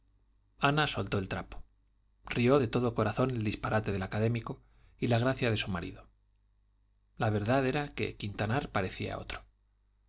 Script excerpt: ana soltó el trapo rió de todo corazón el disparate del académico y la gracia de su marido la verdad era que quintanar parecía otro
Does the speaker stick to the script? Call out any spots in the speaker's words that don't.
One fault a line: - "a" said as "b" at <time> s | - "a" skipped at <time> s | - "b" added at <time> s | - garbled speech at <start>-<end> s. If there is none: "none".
none